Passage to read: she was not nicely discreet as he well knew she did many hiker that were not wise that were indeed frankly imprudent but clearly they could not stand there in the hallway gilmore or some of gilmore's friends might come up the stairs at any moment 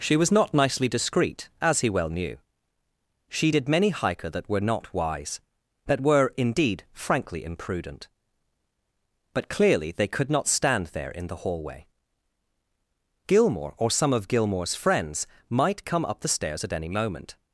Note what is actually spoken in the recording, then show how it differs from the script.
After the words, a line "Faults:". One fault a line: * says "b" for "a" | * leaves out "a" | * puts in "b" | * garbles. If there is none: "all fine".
she was not nicely discreet as he well knew she did many hiker that were not wise that were indeed frankly imprudent but clearly they could not stand there in the hallway gilmore or some of gilmore's friends might come up the stairs at any moment
Faults:
all fine